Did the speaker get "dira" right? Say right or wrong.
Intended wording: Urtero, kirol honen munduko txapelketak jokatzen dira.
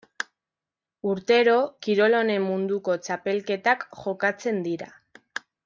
right